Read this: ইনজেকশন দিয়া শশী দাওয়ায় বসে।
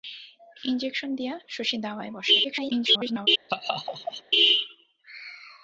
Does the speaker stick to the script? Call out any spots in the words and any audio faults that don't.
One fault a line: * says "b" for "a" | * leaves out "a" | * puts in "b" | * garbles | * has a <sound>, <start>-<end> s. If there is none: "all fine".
* garbles
* has a laugh, 3.5-4.2 s